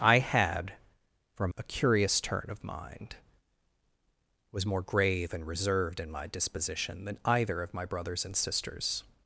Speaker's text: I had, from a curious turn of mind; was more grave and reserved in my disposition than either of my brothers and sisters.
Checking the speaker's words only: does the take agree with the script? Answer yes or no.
yes